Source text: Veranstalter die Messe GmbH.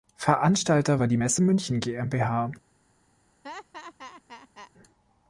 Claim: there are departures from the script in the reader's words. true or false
true